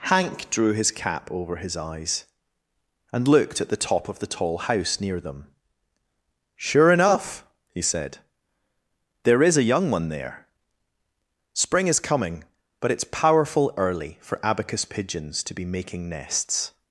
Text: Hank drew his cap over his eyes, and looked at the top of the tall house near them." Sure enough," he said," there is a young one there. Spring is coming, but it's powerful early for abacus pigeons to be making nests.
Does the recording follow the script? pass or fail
pass